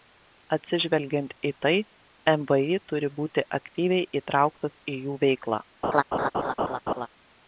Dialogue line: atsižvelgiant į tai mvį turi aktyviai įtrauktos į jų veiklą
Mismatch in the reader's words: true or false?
true